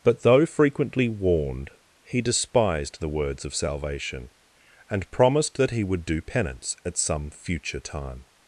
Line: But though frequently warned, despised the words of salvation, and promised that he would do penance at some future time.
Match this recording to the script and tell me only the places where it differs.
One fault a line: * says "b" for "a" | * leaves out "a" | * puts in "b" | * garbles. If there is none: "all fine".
* puts in "he"